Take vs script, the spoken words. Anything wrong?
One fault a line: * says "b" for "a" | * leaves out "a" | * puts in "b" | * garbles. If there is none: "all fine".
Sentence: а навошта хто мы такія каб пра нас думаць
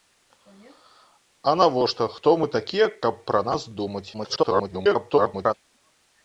* garbles